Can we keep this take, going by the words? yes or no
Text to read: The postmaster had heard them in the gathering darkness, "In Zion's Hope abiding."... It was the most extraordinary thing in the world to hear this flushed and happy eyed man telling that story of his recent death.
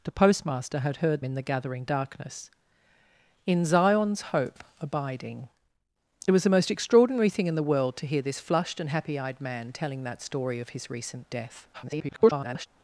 no